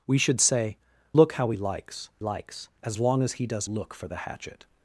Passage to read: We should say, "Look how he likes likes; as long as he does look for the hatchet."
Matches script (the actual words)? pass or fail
pass